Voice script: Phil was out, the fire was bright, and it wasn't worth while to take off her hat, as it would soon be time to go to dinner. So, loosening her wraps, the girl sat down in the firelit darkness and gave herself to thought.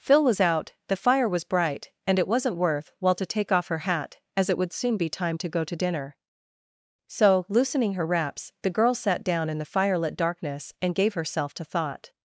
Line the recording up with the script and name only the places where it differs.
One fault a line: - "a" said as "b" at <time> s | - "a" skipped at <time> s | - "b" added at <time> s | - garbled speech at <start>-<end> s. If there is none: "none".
none